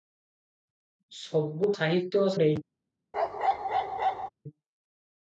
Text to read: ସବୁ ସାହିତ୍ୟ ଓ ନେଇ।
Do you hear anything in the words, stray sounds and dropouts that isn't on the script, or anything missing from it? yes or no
yes